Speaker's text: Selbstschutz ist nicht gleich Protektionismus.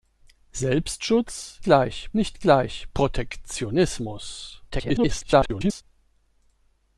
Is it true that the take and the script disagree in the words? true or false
true